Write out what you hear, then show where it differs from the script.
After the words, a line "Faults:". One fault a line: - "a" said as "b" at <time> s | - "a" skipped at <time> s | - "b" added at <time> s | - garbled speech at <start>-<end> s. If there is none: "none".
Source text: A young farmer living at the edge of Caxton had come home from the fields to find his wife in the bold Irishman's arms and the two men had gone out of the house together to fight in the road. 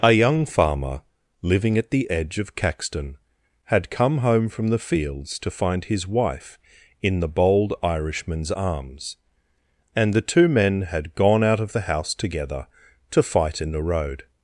A young farmer living at the edge of Caxton had come home from the fields to find his wife in the bold Irishman's arms and the two men had gone out of the house together to fight in the road.
Faults:
none